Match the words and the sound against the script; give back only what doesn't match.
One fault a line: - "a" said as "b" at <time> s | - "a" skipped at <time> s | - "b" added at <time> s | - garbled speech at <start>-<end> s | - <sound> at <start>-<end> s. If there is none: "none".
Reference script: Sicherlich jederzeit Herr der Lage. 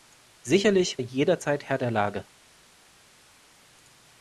none